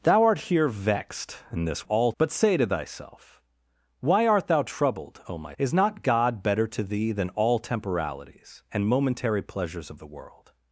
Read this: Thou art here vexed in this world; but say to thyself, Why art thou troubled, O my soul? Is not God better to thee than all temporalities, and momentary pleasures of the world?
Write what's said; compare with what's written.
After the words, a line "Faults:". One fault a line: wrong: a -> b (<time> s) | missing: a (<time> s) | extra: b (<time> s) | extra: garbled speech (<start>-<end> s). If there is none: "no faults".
Thou art here vexed in this all; but say to thyself, Why art thou troubled, O my? Is not God better to thee than all temporalities, and momentary pleasures of the world?
Faults:
wrong: world -> all (1.8 s)
missing: soul (5.5 s)